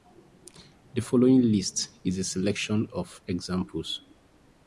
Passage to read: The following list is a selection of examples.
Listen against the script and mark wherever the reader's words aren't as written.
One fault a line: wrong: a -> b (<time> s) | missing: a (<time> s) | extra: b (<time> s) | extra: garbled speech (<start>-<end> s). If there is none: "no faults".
no faults